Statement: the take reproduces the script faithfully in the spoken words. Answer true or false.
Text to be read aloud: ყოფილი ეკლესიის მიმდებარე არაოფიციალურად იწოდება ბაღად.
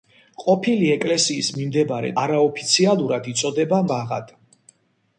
true